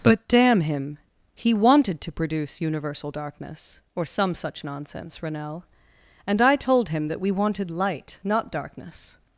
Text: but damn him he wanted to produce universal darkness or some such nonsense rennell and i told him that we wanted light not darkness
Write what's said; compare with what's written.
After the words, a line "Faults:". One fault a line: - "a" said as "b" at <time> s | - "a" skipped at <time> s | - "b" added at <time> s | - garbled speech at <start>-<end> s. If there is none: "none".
but damn him he wanted to produce universal darkness or some such nonsense rennell and i told him that we wanted light not darkness
Faults:
none